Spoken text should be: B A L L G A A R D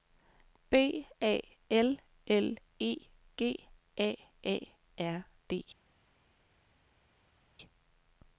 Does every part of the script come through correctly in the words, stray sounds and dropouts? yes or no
no